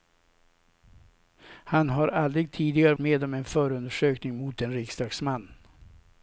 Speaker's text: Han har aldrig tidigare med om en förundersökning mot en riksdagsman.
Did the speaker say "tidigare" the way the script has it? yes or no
yes